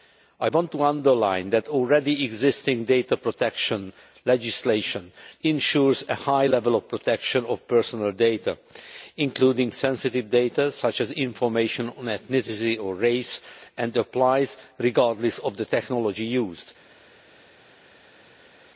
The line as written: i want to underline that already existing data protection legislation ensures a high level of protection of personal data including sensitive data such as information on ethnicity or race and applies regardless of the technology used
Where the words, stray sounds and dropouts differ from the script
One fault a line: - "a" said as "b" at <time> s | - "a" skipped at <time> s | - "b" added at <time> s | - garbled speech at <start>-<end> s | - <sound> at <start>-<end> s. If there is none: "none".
none